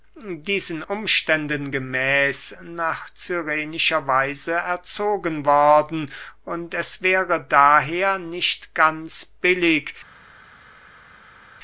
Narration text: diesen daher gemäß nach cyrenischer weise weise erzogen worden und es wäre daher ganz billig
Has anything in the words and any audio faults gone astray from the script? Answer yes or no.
yes